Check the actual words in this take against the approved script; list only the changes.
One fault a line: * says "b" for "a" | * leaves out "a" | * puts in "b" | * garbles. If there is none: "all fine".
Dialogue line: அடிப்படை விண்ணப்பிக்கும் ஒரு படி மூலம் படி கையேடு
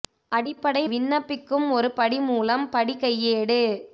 all fine